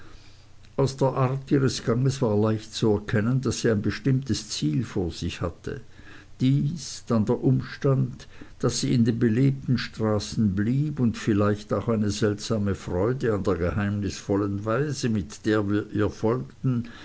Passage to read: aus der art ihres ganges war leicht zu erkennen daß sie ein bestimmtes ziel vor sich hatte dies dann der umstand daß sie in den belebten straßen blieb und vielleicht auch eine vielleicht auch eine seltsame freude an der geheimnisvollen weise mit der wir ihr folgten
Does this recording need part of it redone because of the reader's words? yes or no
yes